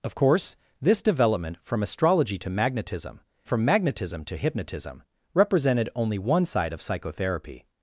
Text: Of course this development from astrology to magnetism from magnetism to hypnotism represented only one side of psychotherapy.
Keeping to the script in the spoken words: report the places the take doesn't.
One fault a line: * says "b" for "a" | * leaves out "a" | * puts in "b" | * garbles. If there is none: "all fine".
all fine